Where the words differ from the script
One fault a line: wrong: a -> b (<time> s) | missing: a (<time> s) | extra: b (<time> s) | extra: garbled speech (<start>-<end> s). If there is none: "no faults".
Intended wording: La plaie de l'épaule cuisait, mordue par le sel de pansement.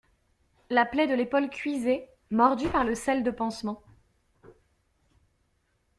no faults